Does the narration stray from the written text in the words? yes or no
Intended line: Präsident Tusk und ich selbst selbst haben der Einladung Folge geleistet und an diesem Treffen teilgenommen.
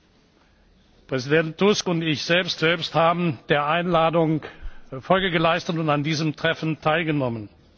no